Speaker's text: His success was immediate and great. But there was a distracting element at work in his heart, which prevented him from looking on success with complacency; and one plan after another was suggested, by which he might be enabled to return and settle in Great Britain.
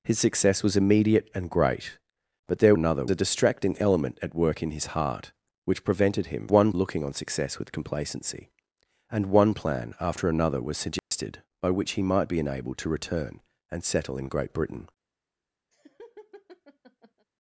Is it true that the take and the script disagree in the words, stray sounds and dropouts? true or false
true